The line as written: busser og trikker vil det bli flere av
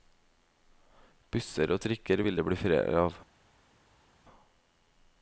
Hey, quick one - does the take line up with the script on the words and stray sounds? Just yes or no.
yes